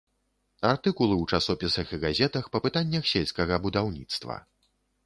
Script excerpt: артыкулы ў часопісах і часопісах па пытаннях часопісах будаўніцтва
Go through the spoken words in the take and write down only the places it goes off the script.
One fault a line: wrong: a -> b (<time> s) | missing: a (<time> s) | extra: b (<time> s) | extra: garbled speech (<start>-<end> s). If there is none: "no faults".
wrong: часопісах -> газетах (2.1 s)
wrong: часопісах -> сельскага (3.2 s)